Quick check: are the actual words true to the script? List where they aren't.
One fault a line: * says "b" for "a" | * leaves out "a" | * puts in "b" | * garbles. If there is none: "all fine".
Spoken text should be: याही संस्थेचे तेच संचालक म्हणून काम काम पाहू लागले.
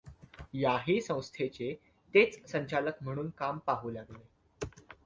* leaves out "काम"